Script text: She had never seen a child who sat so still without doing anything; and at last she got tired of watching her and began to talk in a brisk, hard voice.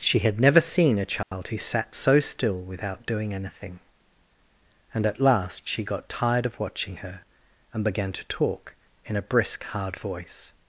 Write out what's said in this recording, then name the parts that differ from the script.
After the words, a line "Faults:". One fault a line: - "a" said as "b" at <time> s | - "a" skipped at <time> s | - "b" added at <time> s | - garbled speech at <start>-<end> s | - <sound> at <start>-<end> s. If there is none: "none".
She had never seen a child who sat so still without doing anything; and at last she got tired of watching her and began to talk in a brisk, hard voice.
Faults:
- dropout at 1.2-1.3 s